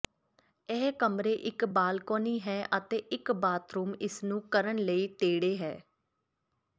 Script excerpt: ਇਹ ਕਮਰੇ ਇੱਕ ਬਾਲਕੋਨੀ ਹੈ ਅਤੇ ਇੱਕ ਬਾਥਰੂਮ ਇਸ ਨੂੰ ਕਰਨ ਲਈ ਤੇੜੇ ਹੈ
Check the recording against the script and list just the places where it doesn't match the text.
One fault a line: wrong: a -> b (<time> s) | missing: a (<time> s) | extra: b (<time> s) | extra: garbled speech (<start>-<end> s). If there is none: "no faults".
no faults